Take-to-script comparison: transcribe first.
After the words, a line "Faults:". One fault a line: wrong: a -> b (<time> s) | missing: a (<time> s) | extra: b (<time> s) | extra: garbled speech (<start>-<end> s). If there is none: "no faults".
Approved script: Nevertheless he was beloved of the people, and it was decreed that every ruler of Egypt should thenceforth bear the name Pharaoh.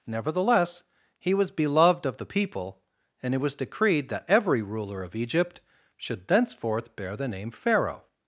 Nevertheless he was beloved of the people, and it was decreed that every ruler of Egypt should thenceforth bear the name Pharaoh.
Faults:
no faults